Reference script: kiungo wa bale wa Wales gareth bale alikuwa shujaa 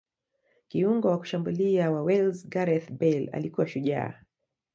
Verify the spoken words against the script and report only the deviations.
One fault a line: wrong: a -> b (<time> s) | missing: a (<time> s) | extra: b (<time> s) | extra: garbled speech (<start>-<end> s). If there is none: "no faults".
wrong: bale -> kushambulia (1.2 s)